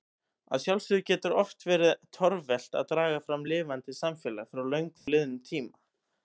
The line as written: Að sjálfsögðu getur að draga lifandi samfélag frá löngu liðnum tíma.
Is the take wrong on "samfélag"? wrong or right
right